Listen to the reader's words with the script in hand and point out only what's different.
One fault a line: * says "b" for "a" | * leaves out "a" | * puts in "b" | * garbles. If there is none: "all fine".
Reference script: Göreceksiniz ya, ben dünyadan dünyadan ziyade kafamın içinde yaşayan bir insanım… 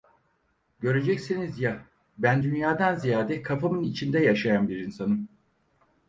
* leaves out "dünyadan"